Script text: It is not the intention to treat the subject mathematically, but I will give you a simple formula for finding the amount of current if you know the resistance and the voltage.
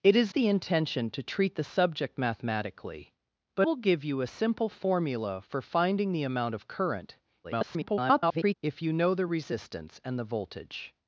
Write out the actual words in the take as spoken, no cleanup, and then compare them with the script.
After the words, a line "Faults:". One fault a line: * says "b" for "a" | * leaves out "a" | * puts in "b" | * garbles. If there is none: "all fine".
It is the intention to treat the subject mathematically, but will give you a simple formula for finding the amount of current [garbled] if you know the resistance and the voltage.
Faults:
* leaves out "not"
* leaves out "I"
* garbles